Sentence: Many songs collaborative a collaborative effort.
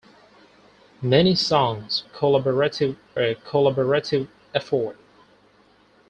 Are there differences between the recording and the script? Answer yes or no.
no